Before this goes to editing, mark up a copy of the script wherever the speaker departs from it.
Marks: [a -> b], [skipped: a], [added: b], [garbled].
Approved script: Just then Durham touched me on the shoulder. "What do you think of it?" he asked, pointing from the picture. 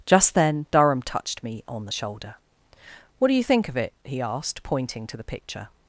Just then Durham touched me on the shoulder. "What do you think of it?" he asked, pointing [from -> to] the picture.